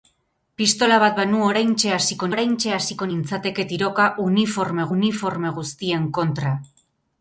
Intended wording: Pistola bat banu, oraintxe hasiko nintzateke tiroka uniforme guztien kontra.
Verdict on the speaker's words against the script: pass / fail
fail